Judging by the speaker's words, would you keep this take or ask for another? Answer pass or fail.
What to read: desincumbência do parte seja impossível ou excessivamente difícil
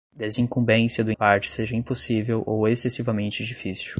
pass